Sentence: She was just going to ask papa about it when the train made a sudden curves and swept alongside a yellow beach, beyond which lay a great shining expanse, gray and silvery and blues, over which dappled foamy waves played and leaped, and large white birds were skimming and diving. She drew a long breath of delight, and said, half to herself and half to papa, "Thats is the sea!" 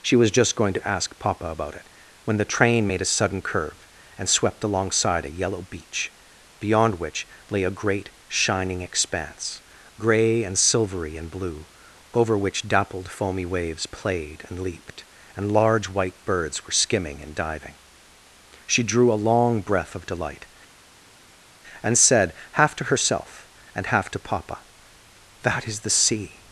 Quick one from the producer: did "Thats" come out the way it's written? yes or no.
no